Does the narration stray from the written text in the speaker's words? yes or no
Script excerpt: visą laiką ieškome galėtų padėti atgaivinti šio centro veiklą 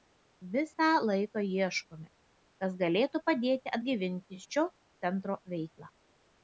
yes